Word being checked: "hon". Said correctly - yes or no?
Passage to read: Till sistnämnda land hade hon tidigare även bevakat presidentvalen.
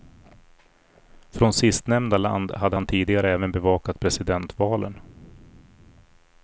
no